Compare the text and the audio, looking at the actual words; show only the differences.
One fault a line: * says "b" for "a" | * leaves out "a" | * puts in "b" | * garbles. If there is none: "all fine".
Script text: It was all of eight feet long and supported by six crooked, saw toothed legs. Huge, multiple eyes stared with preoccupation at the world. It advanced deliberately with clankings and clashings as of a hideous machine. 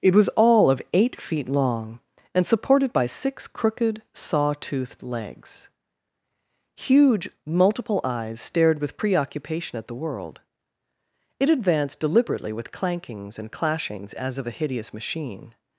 all fine